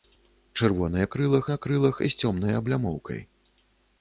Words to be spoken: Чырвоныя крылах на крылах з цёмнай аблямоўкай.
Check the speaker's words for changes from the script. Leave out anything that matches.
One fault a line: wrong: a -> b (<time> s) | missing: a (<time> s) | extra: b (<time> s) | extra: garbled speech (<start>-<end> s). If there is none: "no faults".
no faults